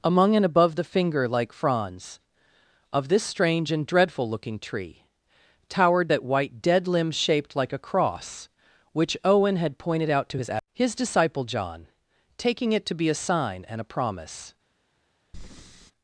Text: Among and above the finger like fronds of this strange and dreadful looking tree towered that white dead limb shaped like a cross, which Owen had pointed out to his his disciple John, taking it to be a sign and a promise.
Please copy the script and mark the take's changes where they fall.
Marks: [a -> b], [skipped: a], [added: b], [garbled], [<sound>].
Among and above the finger like fronds of this strange and dreadful looking tree towered that white dead limb shaped like a cross, which Owen had pointed out to his his disciple John, taking it to be a sign and a promise. [breath]